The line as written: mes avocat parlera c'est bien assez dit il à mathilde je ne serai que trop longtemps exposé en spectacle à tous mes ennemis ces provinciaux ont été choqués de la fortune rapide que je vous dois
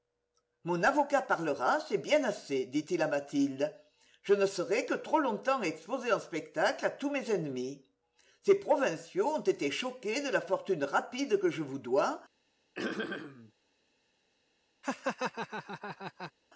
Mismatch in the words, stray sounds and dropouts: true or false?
true